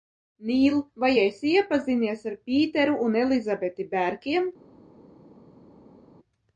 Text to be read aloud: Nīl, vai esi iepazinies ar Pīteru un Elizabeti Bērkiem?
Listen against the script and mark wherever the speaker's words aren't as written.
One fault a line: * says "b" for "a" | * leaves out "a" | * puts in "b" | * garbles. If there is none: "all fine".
all fine